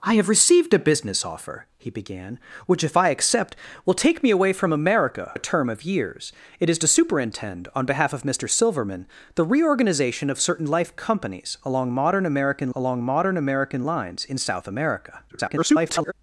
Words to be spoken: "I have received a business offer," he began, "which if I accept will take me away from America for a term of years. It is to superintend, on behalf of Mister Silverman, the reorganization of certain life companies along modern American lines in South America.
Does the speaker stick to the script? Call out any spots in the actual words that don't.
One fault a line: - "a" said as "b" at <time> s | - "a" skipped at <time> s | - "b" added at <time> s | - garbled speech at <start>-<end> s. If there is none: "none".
- "for" skipped at 5.3 s
- "along modern American" added at 12.7 s
- garbled speech at 15.3-16.1 s